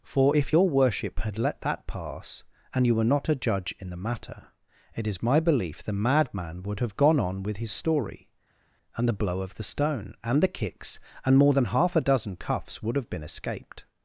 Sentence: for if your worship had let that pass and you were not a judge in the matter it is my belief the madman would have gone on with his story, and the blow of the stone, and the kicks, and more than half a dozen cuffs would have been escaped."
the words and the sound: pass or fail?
pass